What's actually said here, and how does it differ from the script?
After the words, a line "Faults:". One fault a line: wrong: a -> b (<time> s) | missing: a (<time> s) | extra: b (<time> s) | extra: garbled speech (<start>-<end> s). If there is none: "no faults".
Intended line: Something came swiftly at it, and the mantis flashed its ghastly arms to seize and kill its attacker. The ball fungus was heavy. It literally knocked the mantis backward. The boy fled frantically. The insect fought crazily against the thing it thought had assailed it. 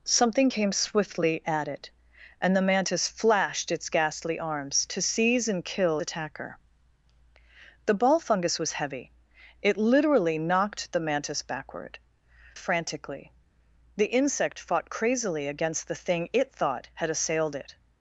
Something came swiftly at it, and the mantis flashed its ghastly arms to seize and kill attacker. The ball fungus was heavy. It literally knocked the mantis backward. Frantically. The insect fought crazily against the thing it thought had assailed it.
Faults:
missing: its (6.0 s)
missing: The boy fled (12.0 s)